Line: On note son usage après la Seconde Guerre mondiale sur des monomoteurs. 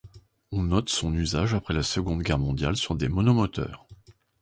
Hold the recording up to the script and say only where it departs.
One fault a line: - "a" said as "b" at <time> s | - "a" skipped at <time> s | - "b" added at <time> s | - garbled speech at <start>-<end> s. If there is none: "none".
none